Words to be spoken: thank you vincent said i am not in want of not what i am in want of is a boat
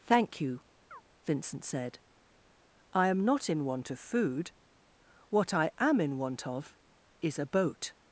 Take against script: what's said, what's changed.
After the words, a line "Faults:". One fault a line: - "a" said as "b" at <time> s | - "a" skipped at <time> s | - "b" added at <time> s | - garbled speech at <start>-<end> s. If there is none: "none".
thank you vincent said i am not in want of food what i am in want of is a boat
Faults:
- "not" said as "food" at 4.0 s